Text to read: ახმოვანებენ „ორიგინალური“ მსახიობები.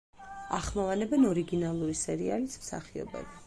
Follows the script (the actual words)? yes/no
no